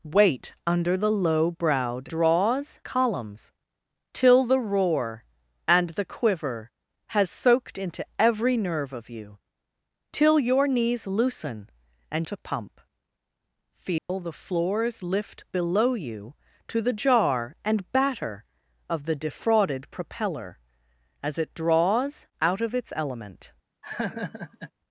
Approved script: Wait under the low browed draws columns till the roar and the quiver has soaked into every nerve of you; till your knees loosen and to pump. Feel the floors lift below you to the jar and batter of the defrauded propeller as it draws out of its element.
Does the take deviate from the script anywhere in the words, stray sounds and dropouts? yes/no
yes